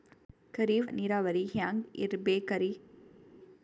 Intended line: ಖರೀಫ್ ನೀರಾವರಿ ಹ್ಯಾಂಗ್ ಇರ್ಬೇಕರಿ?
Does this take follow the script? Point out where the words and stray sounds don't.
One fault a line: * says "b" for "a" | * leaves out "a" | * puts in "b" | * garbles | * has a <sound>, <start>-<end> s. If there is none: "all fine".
all fine